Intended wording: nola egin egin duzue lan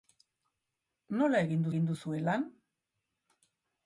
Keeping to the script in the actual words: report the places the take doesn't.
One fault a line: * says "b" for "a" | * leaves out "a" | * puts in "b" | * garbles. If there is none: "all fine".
all fine